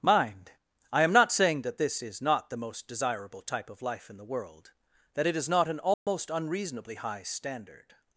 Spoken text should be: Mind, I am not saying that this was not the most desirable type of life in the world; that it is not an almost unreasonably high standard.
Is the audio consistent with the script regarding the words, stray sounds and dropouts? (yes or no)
no